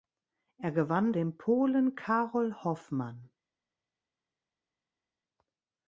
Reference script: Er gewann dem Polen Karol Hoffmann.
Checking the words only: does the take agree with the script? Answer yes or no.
yes